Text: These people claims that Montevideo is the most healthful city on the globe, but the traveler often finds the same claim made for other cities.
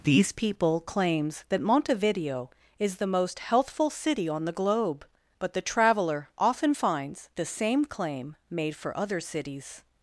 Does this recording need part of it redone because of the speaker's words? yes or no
no